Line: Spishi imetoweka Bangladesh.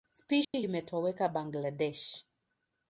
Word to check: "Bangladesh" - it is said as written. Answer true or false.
true